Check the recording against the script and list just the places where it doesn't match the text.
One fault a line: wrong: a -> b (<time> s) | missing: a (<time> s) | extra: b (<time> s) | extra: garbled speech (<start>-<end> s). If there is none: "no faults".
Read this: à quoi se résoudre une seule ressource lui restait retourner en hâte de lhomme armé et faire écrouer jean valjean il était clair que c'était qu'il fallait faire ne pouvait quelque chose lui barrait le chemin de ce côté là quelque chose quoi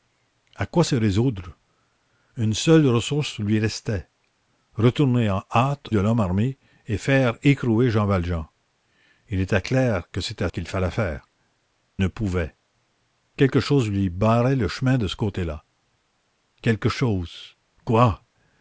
no faults